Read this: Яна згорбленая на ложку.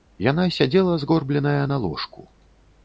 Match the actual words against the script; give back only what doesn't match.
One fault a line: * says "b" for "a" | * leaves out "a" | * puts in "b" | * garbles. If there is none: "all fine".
* puts in "сядзела"